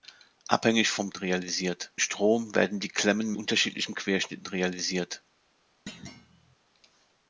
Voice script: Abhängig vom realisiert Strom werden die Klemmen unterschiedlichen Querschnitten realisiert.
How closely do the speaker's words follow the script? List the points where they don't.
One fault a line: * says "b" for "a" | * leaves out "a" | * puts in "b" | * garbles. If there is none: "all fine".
all fine